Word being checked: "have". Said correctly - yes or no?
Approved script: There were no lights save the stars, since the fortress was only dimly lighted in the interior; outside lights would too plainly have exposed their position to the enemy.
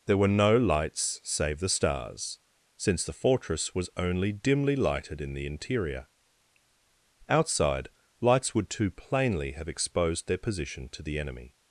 yes